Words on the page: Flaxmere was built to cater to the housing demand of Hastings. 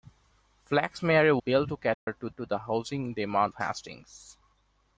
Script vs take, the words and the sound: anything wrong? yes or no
yes